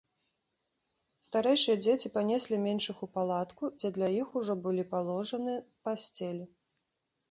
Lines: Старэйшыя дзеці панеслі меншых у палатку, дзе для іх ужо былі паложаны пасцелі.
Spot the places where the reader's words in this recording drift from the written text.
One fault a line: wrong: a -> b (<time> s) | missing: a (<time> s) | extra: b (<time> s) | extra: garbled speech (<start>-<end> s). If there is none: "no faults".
no faults